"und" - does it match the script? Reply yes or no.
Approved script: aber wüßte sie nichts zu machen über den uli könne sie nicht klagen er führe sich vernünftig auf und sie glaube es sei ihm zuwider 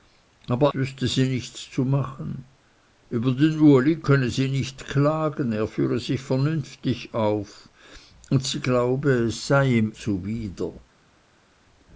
yes